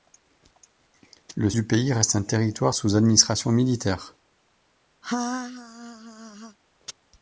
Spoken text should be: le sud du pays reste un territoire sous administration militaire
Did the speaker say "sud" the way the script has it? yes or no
no